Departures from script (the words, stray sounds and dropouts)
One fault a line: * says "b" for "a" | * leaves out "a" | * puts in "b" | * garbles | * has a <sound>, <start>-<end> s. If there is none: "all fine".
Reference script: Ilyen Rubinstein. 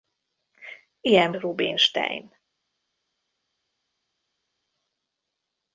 all fine